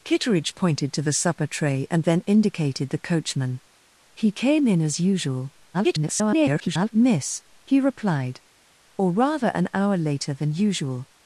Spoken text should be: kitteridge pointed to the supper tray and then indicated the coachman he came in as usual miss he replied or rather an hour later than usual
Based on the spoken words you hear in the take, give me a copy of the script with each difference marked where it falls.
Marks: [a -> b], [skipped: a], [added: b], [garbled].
kitteridge pointed to the supper tray and then indicated the coachman he came in as usual [garbled] miss he replied or rather an hour later than usual